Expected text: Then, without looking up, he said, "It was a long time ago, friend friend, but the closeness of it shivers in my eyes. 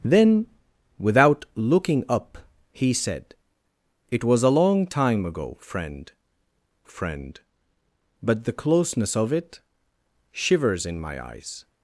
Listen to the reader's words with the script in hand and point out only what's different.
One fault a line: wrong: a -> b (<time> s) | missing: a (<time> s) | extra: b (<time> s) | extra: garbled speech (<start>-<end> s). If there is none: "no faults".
no faults